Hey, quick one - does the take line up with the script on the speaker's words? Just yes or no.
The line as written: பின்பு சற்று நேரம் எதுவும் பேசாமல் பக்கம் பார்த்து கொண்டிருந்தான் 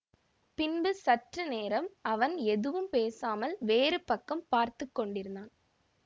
no